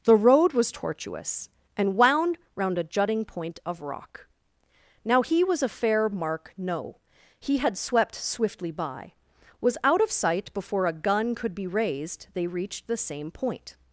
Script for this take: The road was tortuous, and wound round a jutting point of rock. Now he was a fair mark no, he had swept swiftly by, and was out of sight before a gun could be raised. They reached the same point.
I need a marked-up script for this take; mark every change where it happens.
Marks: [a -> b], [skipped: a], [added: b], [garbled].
The road was tortuous, and wound round a jutting point of rock. Now he was a fair mark no, he had swept swiftly by, [skipped: and] was out of sight before a gun could be raised. They reached the same point.